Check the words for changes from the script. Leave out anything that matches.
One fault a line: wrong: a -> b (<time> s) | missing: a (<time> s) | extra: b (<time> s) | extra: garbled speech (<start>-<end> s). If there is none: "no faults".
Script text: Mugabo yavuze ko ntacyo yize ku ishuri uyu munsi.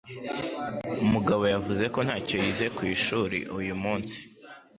no faults